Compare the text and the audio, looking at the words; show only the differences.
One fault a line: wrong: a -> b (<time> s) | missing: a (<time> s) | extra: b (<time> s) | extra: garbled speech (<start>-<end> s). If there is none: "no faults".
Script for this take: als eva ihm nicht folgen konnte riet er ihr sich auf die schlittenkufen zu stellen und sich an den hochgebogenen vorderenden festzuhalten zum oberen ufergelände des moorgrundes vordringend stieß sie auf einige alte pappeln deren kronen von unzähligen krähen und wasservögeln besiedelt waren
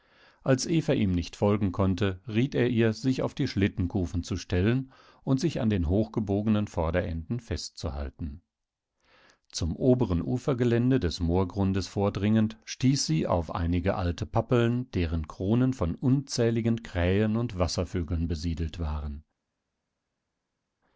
no faults